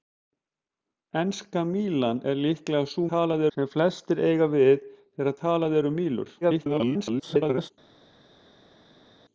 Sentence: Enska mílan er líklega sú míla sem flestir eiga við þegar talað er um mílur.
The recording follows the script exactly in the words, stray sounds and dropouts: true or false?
false